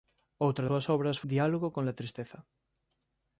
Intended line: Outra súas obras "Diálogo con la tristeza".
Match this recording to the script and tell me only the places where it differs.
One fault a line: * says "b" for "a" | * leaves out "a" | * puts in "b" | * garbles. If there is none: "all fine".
all fine